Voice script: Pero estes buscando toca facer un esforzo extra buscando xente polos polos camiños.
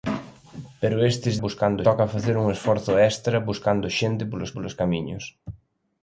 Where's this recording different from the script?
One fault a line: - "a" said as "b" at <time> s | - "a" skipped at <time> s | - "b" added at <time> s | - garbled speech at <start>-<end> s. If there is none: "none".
none